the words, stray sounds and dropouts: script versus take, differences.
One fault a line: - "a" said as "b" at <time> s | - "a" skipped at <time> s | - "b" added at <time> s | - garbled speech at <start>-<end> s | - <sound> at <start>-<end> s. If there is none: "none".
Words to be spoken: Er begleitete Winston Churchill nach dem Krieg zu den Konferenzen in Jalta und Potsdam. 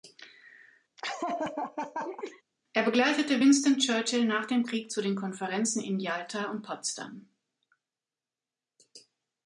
- laugh at 1.0-2.4 s